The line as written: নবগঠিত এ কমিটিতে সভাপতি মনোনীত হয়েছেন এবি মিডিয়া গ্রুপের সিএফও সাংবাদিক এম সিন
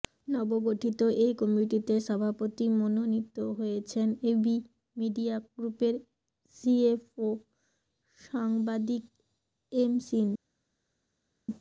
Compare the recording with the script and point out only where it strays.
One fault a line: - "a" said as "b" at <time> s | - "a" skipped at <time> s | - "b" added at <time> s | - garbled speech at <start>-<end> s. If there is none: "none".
none